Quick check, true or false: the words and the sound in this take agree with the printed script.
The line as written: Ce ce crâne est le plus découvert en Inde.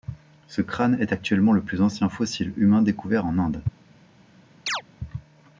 false